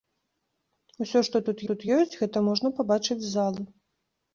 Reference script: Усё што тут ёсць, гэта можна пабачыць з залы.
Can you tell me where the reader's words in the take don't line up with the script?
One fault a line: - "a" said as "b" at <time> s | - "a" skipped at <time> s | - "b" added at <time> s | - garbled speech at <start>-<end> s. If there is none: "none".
- "тут" added at 1.7 s